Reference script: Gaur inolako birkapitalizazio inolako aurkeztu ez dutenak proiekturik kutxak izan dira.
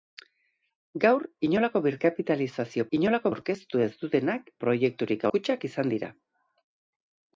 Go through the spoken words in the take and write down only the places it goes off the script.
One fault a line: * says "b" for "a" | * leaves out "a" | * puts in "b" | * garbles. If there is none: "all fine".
all fine